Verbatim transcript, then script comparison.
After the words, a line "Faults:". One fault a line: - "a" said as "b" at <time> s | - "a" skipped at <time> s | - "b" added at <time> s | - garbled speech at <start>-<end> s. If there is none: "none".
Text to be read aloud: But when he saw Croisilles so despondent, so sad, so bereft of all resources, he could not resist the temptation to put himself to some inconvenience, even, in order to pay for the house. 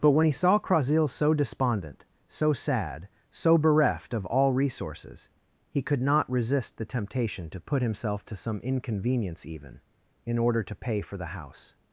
But when he saw Croisilles so despondent, so sad, so bereft of all resources, he could not resist the temptation to put himself to some inconvenience, even, in order to pay for the house.
Faults:
none